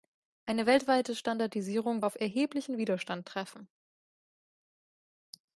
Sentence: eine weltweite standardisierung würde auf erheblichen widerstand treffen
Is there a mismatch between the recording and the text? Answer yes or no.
yes